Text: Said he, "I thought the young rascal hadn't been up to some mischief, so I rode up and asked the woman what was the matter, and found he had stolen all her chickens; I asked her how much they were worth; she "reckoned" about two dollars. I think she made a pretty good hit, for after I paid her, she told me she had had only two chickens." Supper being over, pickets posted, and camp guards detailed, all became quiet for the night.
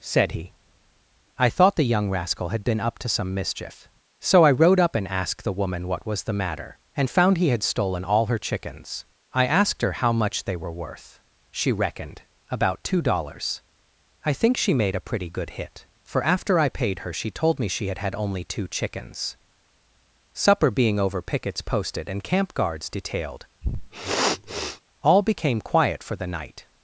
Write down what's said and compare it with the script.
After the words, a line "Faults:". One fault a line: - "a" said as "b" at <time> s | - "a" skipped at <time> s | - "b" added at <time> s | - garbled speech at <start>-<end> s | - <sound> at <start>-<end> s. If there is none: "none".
Said he, "I thought the young rascal had been up to some mischief, so I rode up and asked the woman what was the matter, and found he had stolen all her chickens; I asked her how much they were worth; she "reckoned" about two dollars. I think she made a pretty good hit, for after I paid her, she told me she had had only two chickens." Supper being over, pickets posted, and camp guards detailed, all became quiet for the night.
Faults:
- "hadn't" said as "had" at 2.5 s
- sniff at 23.6-24.8 s